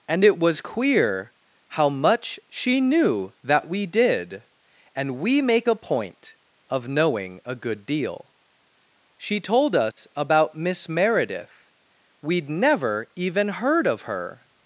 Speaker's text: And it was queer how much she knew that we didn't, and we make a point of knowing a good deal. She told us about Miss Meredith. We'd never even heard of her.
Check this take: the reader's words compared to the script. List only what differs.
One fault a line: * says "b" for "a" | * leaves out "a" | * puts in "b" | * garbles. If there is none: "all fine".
* says "did" for "didn't"